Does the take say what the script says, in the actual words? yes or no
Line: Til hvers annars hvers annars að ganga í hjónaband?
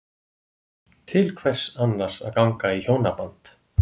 no